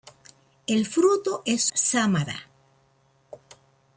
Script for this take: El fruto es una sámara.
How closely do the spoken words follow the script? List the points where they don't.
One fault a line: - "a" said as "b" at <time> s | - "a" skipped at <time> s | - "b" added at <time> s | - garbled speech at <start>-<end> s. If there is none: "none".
- "una" skipped at 1.7 s